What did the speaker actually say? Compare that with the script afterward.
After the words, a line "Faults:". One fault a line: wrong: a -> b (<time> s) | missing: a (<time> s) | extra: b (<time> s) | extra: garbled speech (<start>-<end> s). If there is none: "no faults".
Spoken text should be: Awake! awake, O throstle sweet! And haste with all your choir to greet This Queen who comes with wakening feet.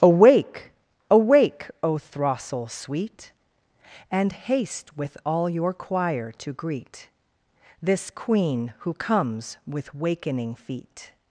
Awake! awake, O throstle sweet! And haste with all your choir to greet This Queen who comes with wakening feet.
Faults:
no faults